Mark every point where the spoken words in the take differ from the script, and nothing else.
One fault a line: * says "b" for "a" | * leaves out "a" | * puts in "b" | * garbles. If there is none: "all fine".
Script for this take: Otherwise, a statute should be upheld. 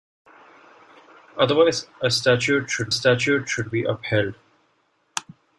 * puts in "statute should"